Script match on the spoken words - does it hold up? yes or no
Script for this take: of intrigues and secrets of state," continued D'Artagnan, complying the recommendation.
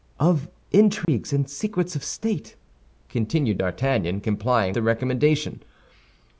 yes